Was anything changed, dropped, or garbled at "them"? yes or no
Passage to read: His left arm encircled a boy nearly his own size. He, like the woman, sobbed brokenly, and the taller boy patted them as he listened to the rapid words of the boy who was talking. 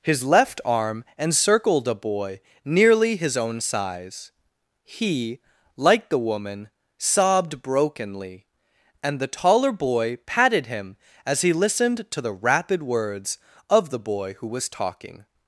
yes